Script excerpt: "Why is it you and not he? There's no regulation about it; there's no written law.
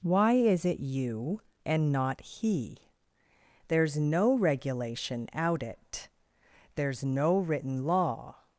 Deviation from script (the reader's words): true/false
true